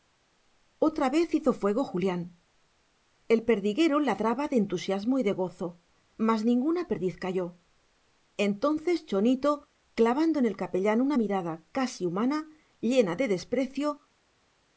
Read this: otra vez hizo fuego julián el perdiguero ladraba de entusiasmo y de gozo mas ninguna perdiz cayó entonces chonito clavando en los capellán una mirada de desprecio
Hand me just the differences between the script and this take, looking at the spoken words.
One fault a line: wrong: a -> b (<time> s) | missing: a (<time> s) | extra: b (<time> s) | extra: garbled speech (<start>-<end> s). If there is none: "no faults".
wrong: los -> el (10.4 s)
extra: casi humana llena (11.7 s)